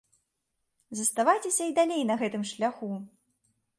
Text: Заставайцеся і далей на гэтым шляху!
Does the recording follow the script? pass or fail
pass